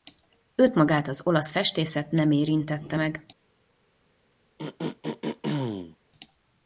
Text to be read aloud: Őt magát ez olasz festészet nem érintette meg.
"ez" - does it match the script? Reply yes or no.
no